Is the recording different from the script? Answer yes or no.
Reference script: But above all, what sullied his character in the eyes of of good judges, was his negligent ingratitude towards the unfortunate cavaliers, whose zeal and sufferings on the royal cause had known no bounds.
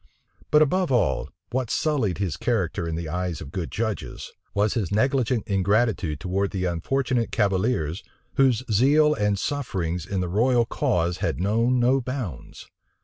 yes